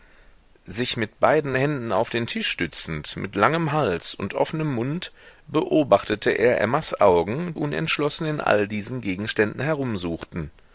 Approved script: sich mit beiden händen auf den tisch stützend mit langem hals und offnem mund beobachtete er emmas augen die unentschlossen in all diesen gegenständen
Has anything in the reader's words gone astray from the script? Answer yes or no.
yes